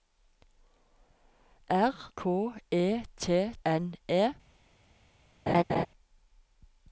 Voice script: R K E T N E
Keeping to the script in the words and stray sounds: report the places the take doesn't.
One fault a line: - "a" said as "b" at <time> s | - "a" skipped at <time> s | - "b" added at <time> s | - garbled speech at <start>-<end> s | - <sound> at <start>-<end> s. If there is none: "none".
- laugh at 5.5-5.9 s